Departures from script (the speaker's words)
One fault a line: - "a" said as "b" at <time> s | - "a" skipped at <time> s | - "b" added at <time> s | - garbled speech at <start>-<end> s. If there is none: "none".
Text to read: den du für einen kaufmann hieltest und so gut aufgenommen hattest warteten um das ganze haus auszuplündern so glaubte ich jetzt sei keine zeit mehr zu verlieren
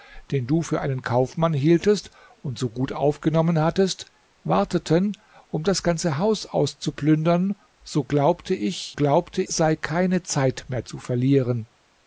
- "jetzt" said as "glaubte" at 8.9 s